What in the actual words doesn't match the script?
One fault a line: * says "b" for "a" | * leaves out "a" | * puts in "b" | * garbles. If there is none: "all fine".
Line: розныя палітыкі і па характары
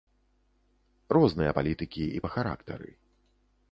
all fine